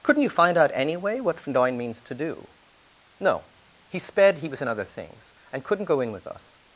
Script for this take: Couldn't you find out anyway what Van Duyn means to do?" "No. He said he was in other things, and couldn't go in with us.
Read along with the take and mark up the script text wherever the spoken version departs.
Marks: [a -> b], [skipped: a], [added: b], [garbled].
Couldn't you find out anyway what Van Duyn means to do?" "No. He [said -> sped] he was in other things, and couldn't go in with us.